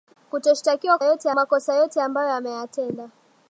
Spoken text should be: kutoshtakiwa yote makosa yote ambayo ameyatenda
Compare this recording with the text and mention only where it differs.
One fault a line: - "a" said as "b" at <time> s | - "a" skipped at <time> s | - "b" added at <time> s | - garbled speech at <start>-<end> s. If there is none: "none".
none